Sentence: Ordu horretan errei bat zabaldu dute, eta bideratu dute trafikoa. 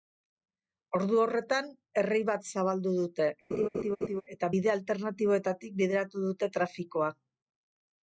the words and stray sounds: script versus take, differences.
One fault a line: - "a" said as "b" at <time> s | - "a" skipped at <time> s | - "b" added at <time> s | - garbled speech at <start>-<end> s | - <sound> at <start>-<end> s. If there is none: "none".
- laugh at 3.5-4.2 s
- "bide alternatiboetatik" added at 4.6 s